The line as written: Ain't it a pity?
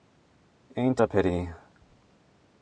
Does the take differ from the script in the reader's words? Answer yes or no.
yes